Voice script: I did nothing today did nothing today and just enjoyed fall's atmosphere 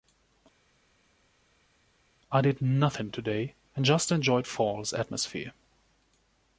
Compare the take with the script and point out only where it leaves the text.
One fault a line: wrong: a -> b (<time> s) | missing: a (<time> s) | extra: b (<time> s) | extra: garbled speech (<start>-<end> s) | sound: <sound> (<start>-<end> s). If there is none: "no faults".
missing: did nothing today (3.5 s)